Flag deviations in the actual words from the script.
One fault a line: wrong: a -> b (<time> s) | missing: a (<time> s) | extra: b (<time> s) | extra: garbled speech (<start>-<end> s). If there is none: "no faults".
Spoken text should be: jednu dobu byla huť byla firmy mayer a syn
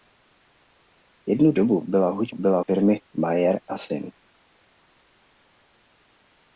no faults